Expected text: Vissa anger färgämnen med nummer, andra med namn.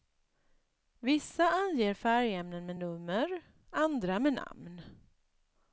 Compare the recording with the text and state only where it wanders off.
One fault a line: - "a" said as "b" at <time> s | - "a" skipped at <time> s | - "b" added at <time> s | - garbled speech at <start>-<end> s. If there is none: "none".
none